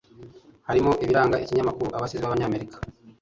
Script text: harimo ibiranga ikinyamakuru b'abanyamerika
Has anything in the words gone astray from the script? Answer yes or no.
yes